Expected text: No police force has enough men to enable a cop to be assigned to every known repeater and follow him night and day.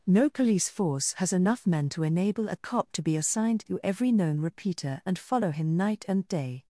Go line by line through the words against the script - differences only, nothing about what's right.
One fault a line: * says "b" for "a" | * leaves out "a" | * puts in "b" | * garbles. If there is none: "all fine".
all fine